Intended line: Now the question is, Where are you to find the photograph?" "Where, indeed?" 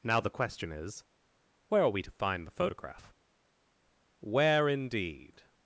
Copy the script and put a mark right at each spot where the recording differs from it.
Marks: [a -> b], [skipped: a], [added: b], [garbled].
Now the question is, Where are [you -> we] to find the photograph?" "Where, indeed?"